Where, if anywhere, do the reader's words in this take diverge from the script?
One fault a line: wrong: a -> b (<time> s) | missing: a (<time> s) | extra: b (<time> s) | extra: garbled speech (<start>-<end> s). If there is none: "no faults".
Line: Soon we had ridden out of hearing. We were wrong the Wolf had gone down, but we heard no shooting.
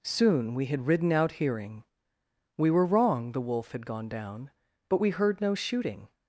missing: of (1.3 s)